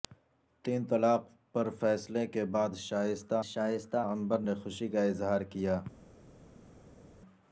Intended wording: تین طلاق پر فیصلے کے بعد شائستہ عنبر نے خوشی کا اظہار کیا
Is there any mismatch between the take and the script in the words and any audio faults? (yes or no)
yes